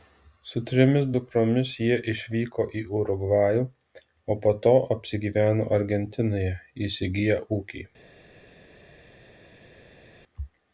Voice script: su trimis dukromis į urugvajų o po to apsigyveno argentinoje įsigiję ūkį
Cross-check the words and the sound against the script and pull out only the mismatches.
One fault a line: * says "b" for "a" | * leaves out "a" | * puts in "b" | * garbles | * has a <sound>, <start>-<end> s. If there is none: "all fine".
* puts in "jie išvyko"